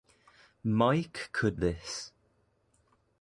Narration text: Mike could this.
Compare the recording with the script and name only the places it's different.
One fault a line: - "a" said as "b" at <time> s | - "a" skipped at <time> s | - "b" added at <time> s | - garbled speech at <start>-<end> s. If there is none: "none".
none